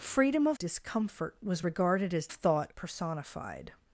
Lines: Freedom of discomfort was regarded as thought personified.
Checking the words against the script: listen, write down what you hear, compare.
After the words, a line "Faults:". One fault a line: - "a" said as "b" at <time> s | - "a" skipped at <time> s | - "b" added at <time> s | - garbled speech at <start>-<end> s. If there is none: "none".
Freedom of discomfort was regarded as thought personified.
Faults:
none